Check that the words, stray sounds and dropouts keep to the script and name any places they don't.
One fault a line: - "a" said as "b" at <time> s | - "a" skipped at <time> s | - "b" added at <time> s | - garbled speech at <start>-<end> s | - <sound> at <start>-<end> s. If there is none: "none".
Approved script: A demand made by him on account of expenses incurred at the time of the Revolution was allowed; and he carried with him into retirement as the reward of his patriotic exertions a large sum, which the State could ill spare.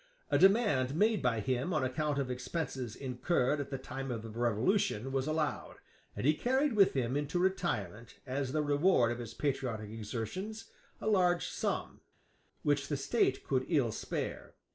none